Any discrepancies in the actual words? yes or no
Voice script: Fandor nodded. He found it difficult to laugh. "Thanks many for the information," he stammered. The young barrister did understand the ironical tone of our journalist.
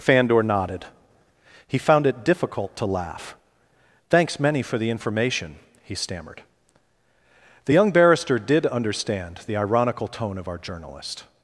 no